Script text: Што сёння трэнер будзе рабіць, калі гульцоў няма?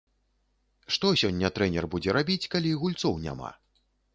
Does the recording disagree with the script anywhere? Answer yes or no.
no